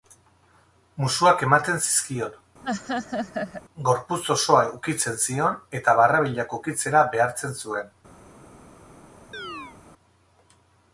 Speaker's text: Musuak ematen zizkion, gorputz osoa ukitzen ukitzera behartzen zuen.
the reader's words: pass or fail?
fail